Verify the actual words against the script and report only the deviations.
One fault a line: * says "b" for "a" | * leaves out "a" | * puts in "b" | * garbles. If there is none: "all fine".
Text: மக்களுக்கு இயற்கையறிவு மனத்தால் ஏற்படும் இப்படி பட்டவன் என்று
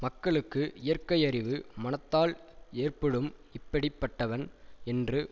all fine